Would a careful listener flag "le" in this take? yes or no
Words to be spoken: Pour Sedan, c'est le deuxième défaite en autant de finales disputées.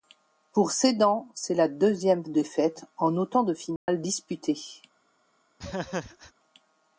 yes